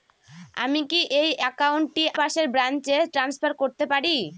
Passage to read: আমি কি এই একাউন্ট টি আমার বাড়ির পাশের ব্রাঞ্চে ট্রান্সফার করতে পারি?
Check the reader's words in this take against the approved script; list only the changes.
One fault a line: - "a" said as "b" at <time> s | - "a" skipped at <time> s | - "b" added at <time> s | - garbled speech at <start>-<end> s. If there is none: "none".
- "আমার বাড়ির" skipped at 2.0 s